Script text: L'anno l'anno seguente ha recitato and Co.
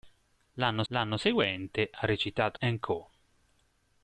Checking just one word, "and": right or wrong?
right